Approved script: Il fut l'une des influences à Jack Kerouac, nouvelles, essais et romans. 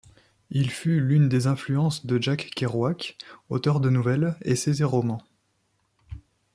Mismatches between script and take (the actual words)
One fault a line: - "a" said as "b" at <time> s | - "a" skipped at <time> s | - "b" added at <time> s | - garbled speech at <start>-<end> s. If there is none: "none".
- "à" said as "de" at 2.1 s
- "auteur de" added at 3.5 s